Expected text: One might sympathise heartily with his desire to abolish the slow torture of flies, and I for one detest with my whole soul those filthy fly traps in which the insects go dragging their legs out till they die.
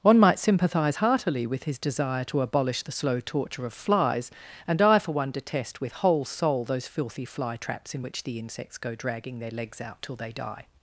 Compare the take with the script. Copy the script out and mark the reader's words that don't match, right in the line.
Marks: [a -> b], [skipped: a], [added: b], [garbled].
One might sympathise heartily with his desire to abolish the slow torture of flies, and I for one detest with [skipped: my] whole soul those filthy fly traps in which the insects go dragging their legs out till they die.